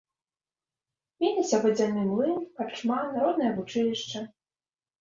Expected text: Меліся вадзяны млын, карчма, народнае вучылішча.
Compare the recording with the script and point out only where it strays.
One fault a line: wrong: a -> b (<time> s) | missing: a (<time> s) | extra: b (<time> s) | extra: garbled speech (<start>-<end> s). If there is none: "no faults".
no faults